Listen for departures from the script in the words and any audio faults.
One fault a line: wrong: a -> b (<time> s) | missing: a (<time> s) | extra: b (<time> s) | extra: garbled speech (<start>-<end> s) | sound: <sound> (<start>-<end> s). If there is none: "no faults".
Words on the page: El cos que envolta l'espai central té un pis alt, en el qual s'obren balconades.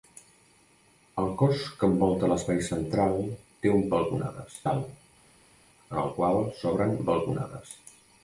wrong: pis -> balconades (4.0 s)